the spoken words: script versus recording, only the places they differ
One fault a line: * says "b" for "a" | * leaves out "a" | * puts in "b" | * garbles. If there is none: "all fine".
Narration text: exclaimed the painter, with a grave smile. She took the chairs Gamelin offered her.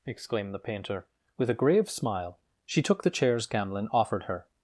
all fine